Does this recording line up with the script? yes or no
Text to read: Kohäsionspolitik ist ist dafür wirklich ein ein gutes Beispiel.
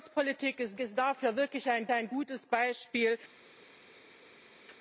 yes